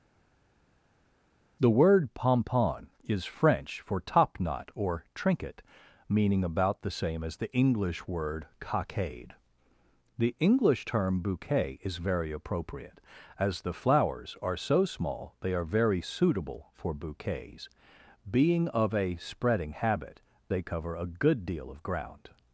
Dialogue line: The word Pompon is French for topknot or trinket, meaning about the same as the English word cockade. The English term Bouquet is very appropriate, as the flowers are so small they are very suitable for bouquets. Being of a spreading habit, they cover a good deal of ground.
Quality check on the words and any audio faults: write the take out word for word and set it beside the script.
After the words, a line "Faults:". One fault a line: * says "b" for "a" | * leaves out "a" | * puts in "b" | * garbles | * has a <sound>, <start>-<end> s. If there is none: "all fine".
The word Pompon is French for topknot or trinket, meaning about the same as the English word cockade. The English term Bouquet is very appropriate, as the flowers are so small they are very suitable for bouquets. Being of a spreading habit, they cover a good deal of ground.
Faults:
all fine